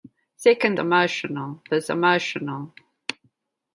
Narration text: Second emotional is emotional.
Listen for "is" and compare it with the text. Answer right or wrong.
right